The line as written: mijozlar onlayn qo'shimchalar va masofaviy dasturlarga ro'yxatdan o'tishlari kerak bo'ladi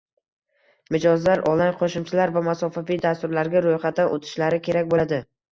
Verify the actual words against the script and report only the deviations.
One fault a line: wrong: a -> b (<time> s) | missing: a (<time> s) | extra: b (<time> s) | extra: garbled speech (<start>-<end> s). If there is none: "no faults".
no faults